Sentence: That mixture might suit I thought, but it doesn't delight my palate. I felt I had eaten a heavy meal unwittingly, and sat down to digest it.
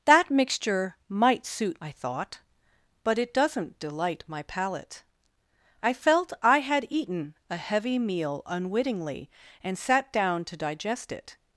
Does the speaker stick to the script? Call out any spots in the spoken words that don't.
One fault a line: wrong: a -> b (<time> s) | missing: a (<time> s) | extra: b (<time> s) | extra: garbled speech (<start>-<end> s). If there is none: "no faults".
no faults